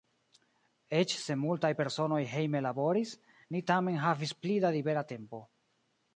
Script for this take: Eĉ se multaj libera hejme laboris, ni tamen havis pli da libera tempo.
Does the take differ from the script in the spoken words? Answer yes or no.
yes